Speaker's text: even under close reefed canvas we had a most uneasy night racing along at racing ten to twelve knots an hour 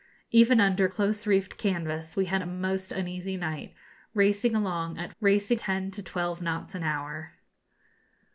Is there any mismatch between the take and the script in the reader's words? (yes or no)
no